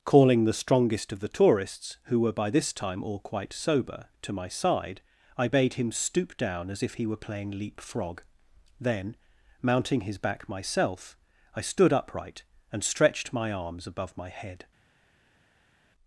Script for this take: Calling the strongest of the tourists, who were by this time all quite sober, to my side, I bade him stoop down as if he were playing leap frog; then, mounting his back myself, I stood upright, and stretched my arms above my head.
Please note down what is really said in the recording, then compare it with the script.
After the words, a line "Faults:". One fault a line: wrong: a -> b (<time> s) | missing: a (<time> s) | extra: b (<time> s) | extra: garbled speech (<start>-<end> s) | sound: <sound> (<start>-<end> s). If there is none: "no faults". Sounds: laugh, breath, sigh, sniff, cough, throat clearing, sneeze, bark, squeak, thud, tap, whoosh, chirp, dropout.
Calling the strongest of the tourists, who were by this time all quite sober, to my side, I bade him stoop down as if he were playing leap frog; then, mounting his back myself, I stood upright, and stretched my arms above my head.
Faults:
no faults